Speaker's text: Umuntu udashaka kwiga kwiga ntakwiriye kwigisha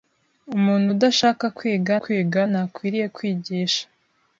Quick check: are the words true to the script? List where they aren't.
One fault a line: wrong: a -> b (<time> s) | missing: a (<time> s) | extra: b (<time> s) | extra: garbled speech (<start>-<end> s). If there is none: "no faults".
no faults